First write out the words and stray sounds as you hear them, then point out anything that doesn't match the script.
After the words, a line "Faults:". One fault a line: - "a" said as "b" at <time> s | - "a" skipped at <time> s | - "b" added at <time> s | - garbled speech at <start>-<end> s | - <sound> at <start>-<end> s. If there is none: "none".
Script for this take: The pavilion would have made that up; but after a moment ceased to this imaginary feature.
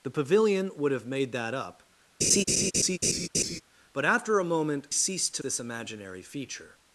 The pavilion would have made that up; but after a moment ceased to this imaginary feature.
Faults:
- laugh at 2.2-3.6 s